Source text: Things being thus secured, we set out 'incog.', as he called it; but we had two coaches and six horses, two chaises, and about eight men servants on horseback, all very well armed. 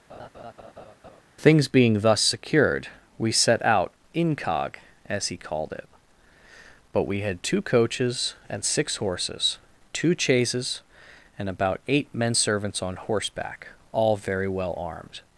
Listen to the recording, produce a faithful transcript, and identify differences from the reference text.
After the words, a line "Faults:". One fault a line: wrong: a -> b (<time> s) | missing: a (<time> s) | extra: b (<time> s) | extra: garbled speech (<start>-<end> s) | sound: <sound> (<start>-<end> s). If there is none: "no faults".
Things being thus secured, we set out 'incog.', as he called it; but we had two coaches and six horses, two chaises, and about eight men servants on horseback, all very well armed.
Faults:
sound: laugh (0.1-1.2 s)